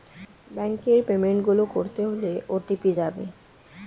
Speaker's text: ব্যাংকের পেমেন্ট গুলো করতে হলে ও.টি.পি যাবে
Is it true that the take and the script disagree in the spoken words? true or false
false